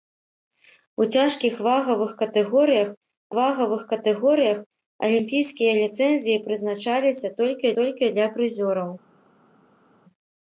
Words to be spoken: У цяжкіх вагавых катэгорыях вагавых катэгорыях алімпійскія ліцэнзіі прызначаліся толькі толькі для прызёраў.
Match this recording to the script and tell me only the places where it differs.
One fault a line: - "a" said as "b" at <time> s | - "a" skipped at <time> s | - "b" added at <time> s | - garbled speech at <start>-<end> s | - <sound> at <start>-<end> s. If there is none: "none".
none